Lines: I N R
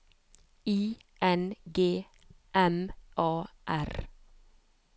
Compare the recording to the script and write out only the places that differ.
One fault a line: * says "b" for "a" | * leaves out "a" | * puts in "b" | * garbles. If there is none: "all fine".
* puts in "G M A"